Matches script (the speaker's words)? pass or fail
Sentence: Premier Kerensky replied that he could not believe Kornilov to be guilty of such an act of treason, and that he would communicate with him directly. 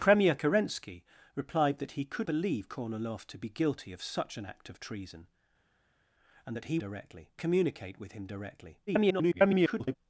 fail